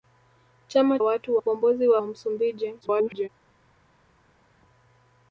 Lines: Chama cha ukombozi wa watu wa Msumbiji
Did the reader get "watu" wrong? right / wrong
wrong